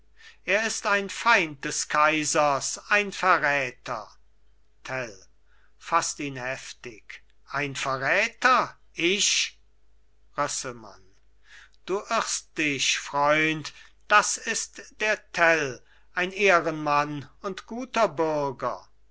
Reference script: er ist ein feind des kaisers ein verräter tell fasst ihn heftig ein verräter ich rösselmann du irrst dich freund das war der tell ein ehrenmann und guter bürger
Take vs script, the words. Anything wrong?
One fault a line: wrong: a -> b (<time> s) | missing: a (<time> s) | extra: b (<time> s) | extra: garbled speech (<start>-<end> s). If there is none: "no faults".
wrong: war -> ist (14.4 s)